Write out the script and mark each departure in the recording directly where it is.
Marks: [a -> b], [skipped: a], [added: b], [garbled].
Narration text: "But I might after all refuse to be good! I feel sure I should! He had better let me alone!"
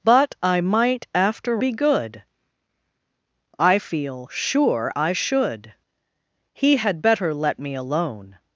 "But I might after [skipped: all refuse to] be good! I feel sure I should! He had better let me alone!"